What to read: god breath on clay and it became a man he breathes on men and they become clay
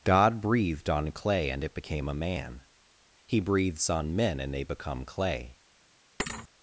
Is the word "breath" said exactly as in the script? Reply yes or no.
no